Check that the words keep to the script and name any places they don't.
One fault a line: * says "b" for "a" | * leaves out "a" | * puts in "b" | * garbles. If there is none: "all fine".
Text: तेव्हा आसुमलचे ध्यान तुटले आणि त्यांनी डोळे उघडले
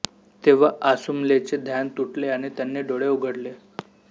all fine